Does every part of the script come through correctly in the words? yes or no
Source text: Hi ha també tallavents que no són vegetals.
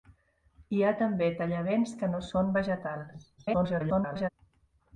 no